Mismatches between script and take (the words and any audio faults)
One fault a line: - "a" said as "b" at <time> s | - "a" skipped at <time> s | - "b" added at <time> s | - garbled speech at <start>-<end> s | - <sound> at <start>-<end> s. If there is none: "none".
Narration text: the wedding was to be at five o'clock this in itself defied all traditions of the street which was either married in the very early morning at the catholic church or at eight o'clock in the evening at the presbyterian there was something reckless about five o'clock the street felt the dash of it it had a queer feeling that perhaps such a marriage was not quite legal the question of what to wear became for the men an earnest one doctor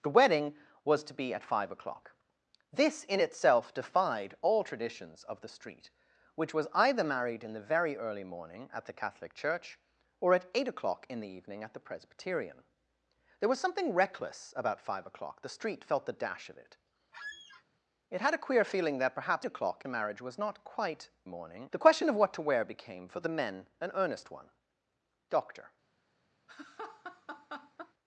- squeak at 17.1-17.6 s
- "such" said as "o'clock" at 19.4 s
- "legal" said as "morning" at 21.2 s
- laugh at 26.5-27.9 s